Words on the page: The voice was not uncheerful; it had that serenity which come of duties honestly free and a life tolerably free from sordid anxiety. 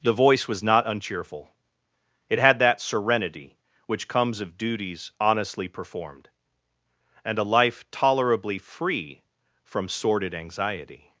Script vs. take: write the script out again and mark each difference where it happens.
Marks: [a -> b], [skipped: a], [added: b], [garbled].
The voice was not uncheerful; it had that serenity which [come -> comes] of duties honestly [free -> performed] and a life tolerably free from sordid anxiety.